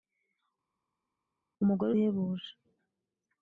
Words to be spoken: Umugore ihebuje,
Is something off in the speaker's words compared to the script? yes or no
no